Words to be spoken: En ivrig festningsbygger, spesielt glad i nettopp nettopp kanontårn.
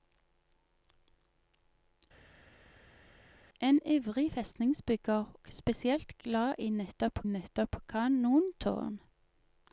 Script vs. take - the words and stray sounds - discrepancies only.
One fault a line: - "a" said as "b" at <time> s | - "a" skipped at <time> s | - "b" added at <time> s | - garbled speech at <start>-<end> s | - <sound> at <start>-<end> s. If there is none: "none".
none